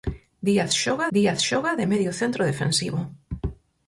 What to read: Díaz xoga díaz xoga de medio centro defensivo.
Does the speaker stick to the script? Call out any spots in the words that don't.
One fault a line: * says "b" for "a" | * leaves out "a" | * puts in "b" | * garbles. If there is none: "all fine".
all fine